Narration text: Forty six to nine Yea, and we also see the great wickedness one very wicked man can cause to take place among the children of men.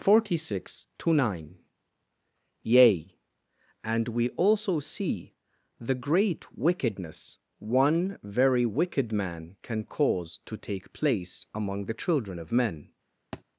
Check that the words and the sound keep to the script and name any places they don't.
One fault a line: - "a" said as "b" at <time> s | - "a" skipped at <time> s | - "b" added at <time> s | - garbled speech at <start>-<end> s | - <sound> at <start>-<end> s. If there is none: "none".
- thud at 13.3-13.4 s